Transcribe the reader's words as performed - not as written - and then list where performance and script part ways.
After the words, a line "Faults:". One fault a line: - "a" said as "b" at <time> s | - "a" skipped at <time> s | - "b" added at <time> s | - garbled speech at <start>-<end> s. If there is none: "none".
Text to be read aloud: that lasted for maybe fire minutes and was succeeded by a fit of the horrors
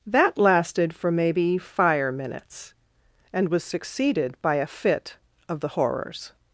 that lasted for maybe fire minutes and was succeeded by a fit of the horrors
Faults:
none